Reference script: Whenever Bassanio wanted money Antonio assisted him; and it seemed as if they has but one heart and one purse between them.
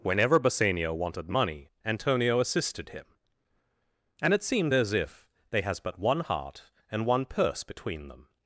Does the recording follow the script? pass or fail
pass